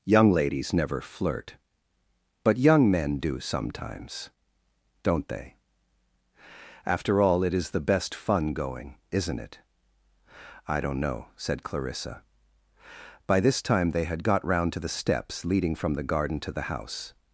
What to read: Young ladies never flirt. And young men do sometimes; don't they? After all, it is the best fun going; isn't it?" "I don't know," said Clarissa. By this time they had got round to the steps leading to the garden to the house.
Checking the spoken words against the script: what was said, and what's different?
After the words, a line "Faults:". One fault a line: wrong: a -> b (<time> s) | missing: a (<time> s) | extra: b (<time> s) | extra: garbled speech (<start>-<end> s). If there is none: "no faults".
Young ladies never flirt. But young men do sometimes; don't they? After all, it is the best fun going; isn't it?" "I don't know," said Clarissa. By this time they had got round to the steps leading from the garden to the house.
Faults:
wrong: And -> But (2.4 s)
wrong: to -> from (15.8 s)